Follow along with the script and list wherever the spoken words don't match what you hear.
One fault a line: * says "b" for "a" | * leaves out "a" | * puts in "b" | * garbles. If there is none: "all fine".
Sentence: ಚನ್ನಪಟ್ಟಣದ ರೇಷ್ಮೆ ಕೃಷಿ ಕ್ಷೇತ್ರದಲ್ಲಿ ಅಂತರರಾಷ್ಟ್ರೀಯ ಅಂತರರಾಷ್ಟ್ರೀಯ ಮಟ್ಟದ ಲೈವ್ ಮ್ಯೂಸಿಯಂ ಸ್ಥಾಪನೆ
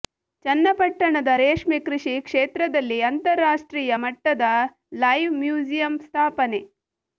* leaves out "ಅಂತರರಾಷ್ಟ್ರೀಯ"